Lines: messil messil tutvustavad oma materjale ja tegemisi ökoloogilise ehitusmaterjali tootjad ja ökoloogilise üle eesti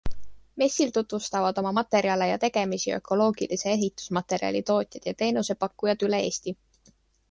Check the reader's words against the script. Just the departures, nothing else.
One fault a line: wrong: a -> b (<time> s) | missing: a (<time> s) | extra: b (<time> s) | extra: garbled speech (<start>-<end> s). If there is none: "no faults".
missing: messil (0.9 s)
wrong: ökoloogilise -> teenusepakkujad (5.2 s)